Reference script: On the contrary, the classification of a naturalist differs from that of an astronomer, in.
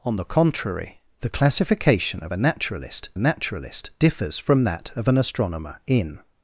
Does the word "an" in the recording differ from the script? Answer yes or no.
no